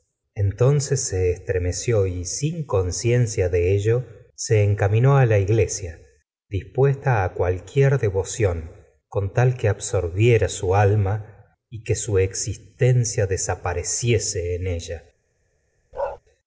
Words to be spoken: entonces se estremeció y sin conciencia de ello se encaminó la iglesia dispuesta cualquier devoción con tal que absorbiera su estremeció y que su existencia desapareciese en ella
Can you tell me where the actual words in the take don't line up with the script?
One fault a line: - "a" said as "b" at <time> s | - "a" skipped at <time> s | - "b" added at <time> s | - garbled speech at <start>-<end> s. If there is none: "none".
- "estremeció" said as "alma" at 10.8 s